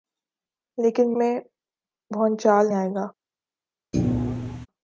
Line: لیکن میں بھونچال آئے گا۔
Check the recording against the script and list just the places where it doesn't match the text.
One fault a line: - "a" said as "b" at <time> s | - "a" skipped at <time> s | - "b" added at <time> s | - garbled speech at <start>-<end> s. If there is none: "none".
none